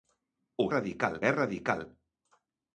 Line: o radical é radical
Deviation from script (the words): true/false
false